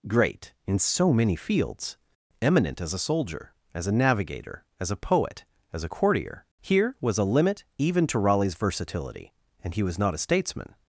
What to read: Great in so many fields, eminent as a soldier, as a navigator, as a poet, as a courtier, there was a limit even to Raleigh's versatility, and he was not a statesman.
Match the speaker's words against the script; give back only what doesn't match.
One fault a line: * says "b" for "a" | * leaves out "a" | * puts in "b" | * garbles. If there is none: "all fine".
* says "here" for "there"